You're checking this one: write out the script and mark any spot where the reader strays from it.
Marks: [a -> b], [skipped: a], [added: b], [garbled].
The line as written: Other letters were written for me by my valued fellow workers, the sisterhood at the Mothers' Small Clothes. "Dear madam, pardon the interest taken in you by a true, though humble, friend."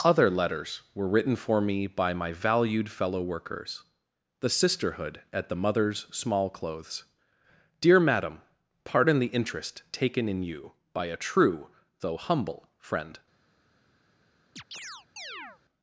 Other letters were written for me by my valued fellow workers, the sisterhood at the Mothers' Small Clothes. "Dear madam, pardon the interest taken in you by a true, though humble, friend."